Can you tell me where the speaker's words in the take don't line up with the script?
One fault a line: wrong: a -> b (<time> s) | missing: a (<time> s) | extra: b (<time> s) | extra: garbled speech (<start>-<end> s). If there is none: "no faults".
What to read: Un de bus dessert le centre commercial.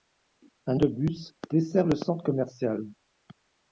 no faults